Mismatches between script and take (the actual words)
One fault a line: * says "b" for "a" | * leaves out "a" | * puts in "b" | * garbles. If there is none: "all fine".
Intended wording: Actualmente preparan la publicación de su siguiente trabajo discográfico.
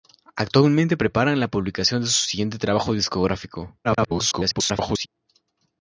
* garbles